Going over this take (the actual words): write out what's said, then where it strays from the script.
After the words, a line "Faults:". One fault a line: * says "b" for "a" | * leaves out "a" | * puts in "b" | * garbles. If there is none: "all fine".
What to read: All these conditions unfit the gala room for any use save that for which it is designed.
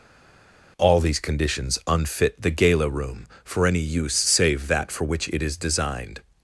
All these conditions unfit the gala room for any use save that for which it is designed.
Faults:
all fine